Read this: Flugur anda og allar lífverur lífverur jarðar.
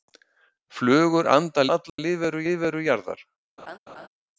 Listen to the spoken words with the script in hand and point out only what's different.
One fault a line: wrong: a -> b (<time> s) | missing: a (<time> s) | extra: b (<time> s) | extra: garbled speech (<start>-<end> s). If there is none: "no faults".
no faults